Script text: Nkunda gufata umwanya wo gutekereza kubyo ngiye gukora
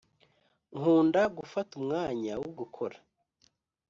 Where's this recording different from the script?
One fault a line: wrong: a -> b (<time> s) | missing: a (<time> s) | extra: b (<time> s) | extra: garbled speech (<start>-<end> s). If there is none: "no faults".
missing: gutekereza kubyo ngiye (2.5 s)